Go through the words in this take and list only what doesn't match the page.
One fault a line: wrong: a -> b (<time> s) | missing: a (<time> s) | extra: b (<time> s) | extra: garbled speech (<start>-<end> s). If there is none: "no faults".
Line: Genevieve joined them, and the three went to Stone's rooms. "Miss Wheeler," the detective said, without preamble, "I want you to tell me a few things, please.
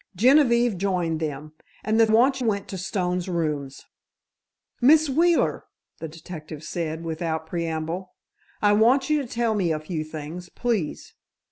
wrong: three -> want (2.1 s)